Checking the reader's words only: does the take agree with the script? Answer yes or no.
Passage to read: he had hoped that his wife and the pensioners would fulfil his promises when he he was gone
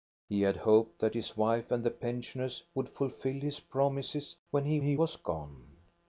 yes